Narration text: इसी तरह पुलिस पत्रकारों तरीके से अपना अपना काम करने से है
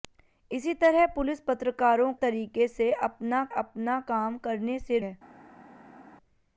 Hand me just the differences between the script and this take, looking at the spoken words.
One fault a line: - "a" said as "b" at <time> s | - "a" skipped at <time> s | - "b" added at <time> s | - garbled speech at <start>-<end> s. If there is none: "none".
none